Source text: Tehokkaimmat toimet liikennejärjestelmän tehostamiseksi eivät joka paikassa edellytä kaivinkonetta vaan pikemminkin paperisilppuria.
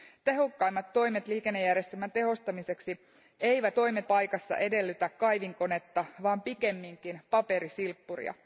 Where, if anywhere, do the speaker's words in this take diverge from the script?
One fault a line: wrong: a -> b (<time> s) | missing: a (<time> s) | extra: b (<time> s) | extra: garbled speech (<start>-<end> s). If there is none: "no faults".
wrong: joka -> toimet (3.7 s)